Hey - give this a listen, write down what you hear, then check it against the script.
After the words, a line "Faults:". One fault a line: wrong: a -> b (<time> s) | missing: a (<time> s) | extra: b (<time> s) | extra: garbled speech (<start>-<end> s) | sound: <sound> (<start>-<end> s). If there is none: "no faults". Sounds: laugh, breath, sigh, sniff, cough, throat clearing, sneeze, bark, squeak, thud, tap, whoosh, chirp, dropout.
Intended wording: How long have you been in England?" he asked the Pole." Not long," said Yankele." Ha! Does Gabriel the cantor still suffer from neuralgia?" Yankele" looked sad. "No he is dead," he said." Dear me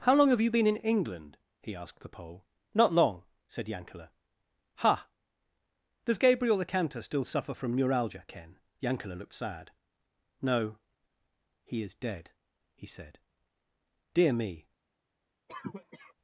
How long have you been in England?" he asked the Pole." Not long," said Yankele." Ha! Does Gabriel the cantor still suffer from neuralgia?" ken Yankele" looked sad. "No he is dead," he said." Dear me
Faults:
extra: ken (8.3 s)
sound: cough (15.5-16.1 s)